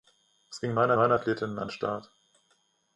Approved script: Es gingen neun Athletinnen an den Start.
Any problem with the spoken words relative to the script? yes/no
yes